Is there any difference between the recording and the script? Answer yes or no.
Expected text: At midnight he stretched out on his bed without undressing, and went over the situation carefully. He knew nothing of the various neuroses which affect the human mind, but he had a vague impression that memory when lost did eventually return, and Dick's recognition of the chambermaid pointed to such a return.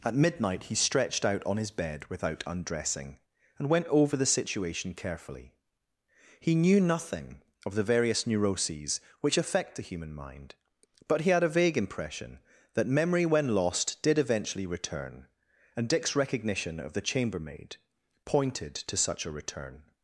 no